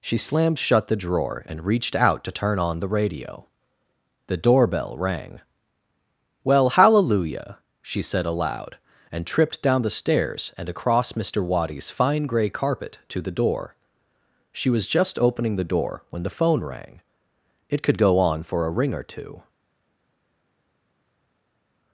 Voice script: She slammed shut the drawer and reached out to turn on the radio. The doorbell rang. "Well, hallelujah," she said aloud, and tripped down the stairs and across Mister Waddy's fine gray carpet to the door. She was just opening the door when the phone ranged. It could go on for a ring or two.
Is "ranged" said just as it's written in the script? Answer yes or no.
no